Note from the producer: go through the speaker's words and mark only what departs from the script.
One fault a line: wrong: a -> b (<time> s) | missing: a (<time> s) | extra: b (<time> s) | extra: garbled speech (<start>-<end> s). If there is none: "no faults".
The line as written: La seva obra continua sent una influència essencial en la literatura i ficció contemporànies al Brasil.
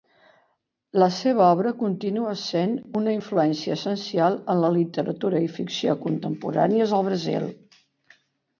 no faults